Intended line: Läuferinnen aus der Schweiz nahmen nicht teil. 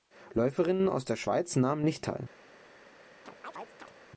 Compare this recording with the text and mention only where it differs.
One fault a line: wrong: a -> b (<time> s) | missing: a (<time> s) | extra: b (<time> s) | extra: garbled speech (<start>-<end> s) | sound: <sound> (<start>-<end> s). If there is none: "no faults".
sound: chirp (3.3-3.9 s)